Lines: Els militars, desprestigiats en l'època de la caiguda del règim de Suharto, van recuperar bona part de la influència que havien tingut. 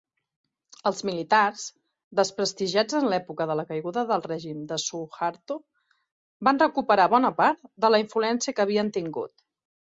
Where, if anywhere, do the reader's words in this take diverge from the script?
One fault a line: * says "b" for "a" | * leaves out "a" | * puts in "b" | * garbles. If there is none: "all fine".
all fine